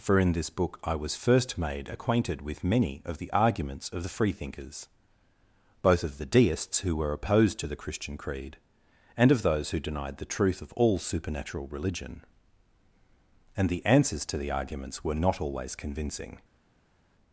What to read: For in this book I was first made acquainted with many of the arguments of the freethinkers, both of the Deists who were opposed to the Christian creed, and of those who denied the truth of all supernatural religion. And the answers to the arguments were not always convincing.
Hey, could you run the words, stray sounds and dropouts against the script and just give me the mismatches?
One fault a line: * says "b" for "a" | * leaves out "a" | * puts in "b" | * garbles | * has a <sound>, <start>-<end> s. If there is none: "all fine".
all fine